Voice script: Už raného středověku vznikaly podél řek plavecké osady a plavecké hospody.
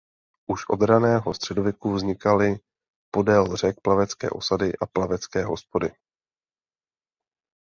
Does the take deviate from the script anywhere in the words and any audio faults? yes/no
yes